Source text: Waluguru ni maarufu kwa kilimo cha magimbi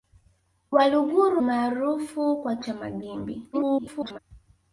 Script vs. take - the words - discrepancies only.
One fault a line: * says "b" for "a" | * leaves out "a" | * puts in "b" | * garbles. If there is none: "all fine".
* leaves out "ni"
* leaves out "kilimo"
* garbles